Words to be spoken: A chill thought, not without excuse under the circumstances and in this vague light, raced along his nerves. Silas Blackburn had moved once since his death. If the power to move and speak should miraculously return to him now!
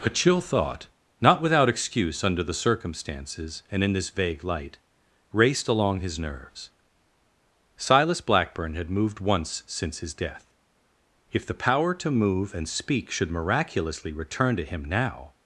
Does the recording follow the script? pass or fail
pass